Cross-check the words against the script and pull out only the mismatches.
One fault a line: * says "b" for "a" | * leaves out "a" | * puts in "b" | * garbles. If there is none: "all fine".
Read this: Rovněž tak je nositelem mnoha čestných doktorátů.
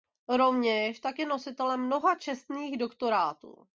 all fine